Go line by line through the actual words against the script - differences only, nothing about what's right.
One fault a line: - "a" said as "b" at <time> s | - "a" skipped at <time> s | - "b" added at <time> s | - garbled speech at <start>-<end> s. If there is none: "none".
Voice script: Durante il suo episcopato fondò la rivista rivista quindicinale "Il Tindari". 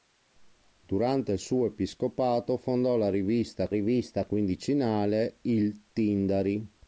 none